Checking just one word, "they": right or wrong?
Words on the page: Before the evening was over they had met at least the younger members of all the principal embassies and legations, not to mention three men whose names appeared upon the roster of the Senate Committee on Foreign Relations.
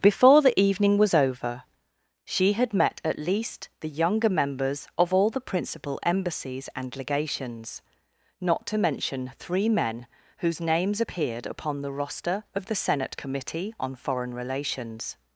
wrong